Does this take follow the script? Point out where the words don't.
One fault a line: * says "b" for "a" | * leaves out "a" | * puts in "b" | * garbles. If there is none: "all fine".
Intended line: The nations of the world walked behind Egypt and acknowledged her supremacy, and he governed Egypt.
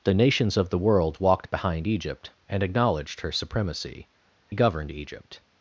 * leaves out "and"